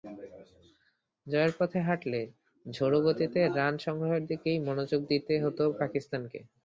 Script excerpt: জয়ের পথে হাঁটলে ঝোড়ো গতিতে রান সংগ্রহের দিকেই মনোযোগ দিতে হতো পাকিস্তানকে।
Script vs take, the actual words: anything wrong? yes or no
no